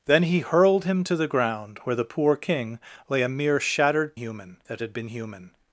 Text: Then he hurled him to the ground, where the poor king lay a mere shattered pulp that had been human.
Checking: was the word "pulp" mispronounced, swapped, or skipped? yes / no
yes